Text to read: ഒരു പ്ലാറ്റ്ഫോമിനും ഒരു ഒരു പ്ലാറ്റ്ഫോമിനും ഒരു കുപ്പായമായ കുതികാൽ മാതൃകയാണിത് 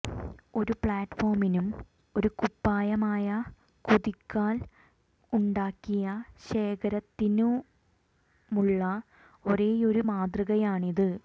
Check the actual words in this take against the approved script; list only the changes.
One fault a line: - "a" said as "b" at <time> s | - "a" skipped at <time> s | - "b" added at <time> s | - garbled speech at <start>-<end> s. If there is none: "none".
- "ഒരു പ്ലാറ്റ്ഫോമിനും ഒരു കുപ്പായമായ കുതികാൽ" said as "കുപ്പായമായ കുതികാൽ ഉണ്ടാക്കിയ ശേഖരത്തിനുമുള്ള ഒരേയൊരു" at 2.4 s